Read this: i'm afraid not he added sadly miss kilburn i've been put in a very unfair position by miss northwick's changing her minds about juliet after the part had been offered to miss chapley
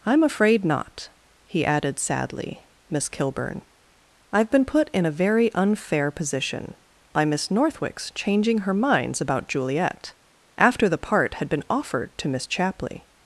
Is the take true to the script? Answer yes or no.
yes